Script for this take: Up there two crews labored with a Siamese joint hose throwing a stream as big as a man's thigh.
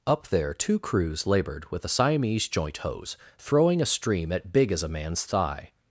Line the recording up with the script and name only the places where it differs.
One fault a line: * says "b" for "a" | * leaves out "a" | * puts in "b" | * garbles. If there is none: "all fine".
* says "at" for "as"